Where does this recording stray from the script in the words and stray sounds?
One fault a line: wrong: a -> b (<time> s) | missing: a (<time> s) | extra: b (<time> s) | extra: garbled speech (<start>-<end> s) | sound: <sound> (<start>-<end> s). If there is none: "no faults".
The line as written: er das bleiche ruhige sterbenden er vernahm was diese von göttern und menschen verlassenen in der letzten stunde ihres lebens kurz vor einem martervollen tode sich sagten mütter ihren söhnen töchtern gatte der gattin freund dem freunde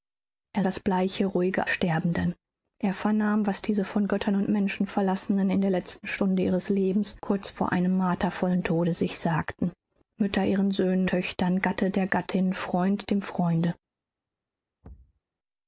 sound: thud (14.8-15.2 s)